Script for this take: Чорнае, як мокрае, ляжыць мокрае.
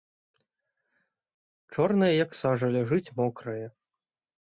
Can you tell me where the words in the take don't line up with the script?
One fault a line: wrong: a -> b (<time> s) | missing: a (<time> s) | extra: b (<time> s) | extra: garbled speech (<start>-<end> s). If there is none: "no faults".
wrong: мокрае -> сажа (2.4 s)